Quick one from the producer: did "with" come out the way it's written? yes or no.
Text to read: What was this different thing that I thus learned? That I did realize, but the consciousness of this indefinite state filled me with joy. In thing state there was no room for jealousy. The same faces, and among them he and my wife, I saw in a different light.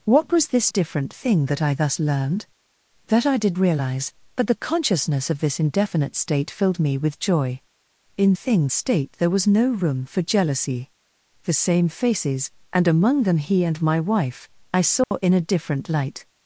yes